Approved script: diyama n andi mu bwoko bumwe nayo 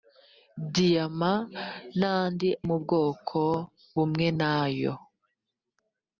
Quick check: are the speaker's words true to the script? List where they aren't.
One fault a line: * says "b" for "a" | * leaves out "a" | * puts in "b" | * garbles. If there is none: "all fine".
all fine